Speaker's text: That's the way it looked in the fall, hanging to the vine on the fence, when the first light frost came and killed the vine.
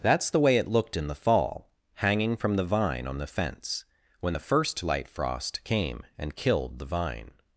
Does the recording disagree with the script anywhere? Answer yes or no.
yes